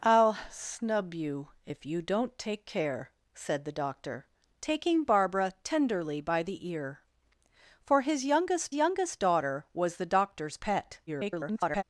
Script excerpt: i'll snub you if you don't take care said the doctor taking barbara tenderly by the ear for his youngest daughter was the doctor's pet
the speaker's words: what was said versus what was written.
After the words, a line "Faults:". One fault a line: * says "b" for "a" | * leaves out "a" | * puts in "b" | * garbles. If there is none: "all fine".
i'll snub you if you don't take care said the doctor taking barbara tenderly by the ear for his youngest youngest daughter was the doctor's pet [garbled]
Faults:
* puts in "youngest"
* garbles